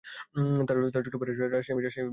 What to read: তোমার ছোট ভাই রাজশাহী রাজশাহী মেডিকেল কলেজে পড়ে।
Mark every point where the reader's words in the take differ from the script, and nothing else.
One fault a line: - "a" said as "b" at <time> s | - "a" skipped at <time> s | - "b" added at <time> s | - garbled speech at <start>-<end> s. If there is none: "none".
- "তোমার" said as "তার" at 0.7 s
- "রাজশাহী" skipped at 1.8 s